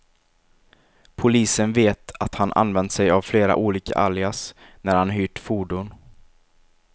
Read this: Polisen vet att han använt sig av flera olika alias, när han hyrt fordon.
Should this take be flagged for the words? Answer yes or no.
no